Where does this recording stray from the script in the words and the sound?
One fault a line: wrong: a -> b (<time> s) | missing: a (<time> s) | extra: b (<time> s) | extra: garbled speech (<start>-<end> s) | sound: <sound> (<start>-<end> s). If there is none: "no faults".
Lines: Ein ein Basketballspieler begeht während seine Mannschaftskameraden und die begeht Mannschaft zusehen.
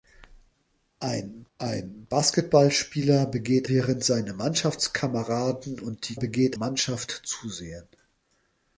no faults